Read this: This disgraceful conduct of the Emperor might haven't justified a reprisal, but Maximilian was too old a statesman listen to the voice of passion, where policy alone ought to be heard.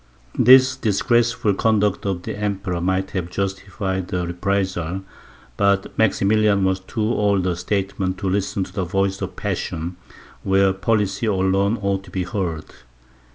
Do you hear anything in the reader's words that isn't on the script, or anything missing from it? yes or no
yes